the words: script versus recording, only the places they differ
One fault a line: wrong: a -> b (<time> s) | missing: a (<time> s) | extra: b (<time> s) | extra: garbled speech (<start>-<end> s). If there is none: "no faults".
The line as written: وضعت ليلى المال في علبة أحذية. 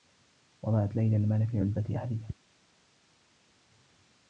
no faults